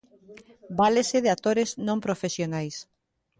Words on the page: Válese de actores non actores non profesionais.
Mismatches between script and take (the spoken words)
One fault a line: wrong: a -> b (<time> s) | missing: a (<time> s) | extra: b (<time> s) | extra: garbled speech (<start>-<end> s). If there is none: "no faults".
missing: actores non (2.0 s)